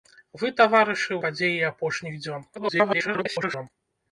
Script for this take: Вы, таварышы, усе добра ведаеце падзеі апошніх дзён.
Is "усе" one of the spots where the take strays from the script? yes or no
yes